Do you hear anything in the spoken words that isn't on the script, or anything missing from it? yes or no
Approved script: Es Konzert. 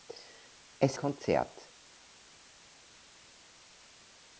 no